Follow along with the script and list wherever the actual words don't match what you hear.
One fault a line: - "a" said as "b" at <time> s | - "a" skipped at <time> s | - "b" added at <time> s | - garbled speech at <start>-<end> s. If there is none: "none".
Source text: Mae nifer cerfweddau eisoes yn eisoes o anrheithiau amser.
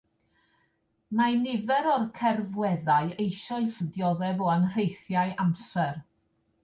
- "o'r" added at 1.9 s
- "eisoes" said as "dioddef" at 4.0 s